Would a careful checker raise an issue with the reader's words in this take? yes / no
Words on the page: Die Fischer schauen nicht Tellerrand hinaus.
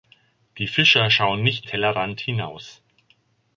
no